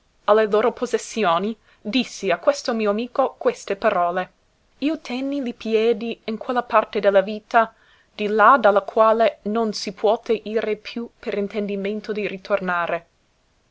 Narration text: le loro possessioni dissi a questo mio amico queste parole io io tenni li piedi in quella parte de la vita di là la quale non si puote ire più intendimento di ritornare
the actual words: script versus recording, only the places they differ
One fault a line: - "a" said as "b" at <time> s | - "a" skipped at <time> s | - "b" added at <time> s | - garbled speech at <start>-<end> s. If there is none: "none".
- "io" skipped at 5.0 s
- "da" added at 8.6 s
- "per" added at 11.2 s